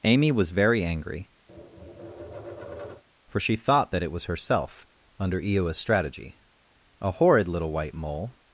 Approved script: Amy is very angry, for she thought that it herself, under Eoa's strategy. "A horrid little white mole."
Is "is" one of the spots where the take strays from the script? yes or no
yes